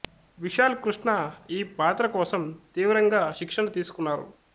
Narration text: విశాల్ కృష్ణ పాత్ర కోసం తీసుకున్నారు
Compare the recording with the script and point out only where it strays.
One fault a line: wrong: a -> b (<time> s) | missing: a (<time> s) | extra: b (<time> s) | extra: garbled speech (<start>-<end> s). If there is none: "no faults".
extra: ఈ (1.5 s)
extra: తీవ్రంగా శిక్షణ (2.8 s)